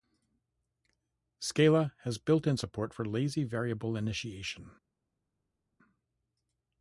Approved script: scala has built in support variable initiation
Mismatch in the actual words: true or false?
true